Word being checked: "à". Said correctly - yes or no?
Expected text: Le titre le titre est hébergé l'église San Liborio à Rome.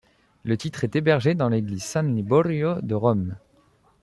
no